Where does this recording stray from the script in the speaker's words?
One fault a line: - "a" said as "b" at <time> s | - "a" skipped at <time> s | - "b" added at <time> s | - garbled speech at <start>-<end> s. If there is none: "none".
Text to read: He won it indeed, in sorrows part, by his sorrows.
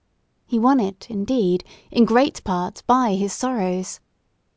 - "sorrows" said as "great" at 2.0 s